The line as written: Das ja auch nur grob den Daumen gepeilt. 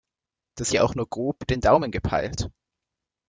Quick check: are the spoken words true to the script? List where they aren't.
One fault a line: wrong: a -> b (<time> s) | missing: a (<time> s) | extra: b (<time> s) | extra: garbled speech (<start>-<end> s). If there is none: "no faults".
no faults